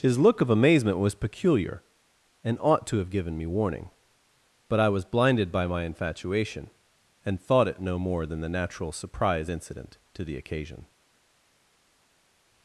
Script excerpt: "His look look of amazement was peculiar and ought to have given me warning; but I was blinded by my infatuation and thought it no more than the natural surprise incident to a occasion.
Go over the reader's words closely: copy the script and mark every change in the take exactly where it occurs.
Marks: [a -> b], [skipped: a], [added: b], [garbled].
"His look [skipped: look] of amazement was peculiar and ought to have given me warning; but I was blinded by my infatuation and thought it no more than the natural surprise incident to [a -> the] occasion.